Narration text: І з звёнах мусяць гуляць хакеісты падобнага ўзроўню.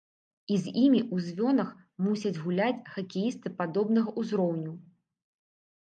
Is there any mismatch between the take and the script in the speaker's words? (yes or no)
yes